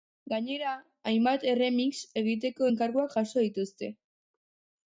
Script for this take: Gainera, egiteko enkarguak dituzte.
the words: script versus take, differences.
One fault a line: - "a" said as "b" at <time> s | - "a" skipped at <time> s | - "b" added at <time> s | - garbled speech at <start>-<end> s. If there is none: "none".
- "hainbat erremix" added at 1.1 s
- "jaso" added at 3.2 s